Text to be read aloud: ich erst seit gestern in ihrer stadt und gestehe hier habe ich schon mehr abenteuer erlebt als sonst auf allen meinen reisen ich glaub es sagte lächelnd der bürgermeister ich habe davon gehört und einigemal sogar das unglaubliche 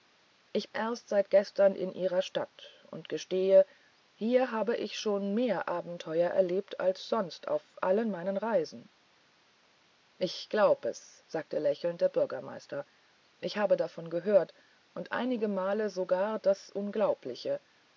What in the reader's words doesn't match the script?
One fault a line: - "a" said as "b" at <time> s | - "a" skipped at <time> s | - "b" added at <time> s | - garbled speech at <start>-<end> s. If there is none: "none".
none